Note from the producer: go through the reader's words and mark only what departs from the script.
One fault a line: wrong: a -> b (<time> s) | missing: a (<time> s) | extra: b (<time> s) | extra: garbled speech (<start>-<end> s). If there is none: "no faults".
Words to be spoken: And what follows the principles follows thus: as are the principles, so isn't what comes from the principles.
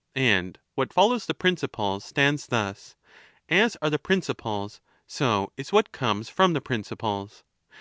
wrong: follows -> stands (2.0 s)
wrong: isn't -> is (5.6 s)